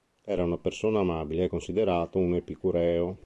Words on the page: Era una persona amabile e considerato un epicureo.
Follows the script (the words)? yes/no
yes